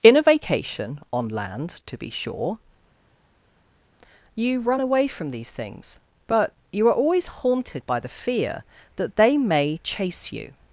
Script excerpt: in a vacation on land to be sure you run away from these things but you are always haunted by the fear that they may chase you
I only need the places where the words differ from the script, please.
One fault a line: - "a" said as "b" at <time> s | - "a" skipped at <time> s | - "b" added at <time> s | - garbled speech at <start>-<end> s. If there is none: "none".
none